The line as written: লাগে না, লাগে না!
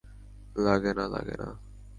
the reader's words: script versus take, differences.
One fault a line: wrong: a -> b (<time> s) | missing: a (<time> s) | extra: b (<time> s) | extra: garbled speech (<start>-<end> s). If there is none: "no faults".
no faults